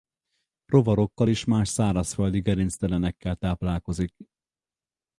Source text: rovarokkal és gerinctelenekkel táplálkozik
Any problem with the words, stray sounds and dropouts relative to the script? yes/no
yes